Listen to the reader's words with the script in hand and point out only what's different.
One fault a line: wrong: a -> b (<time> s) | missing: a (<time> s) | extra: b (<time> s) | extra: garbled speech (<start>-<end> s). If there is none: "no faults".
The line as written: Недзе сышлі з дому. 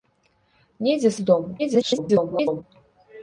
missing: сышлі (1.1 s)
extra: garbled speech (1.6-2.6 s)